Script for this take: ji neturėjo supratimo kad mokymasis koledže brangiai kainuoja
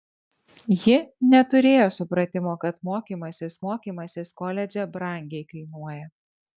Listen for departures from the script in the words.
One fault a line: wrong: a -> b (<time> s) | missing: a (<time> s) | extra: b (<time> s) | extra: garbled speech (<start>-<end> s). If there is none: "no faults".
extra: mokymasis (3.7 s)